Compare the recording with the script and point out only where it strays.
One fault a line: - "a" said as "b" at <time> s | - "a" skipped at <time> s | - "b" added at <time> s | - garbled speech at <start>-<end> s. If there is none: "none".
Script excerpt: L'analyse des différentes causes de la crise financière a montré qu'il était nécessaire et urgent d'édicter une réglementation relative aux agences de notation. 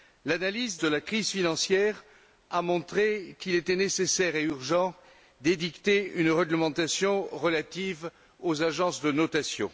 - "des différentes causes" skipped at 0.8 s